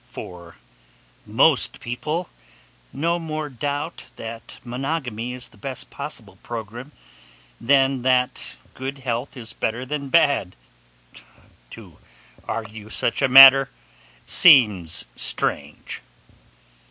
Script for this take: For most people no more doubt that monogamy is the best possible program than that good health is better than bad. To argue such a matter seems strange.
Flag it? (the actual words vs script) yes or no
no